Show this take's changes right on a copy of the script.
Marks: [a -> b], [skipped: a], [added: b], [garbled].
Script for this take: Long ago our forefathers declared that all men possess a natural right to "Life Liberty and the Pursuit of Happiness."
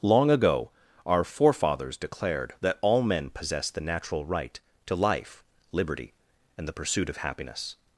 Long ago our forefathers declared that all men possess [a -> the] natural right to "Life Liberty and the Pursuit of Happiness."